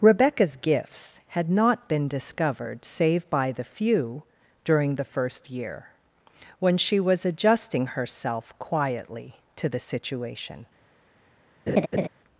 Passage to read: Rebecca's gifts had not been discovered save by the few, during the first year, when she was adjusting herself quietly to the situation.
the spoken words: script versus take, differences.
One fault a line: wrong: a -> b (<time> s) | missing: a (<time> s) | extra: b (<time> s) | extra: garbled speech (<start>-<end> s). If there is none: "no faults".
no faults